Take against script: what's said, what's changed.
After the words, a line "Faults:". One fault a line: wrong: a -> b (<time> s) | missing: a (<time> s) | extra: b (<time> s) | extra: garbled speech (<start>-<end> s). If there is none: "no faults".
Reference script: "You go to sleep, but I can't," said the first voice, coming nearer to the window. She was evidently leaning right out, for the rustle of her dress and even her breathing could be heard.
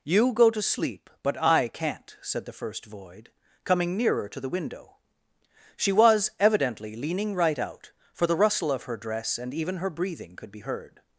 "You go to sleep, but I can't," said the first void, coming nearer to the window. She was evidently leaning right out, for the rustle of her dress and even her breathing could be heard.
Faults:
wrong: voice -> void (2.9 s)